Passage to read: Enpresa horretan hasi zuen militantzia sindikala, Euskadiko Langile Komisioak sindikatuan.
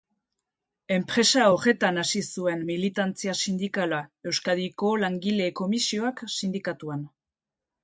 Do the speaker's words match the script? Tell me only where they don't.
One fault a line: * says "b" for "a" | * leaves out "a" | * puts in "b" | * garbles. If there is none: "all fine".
all fine